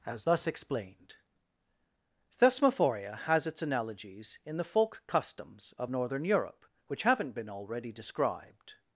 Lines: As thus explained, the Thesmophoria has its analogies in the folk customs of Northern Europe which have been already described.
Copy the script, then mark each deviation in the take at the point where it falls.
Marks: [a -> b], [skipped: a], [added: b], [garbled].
As thus explained, [skipped: the] Thesmophoria has its analogies in the folk customs of Northern Europe which [have -> haven't] been already described.